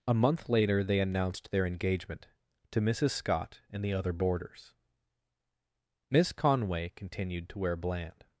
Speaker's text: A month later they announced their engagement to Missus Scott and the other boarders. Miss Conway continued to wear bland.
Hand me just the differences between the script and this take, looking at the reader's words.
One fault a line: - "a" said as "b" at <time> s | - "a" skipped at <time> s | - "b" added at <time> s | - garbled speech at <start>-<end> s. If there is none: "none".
none